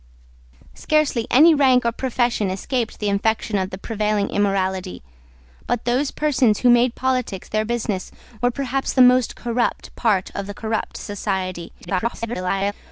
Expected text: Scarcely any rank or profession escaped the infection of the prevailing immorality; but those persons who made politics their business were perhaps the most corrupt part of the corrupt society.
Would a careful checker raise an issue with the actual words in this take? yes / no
yes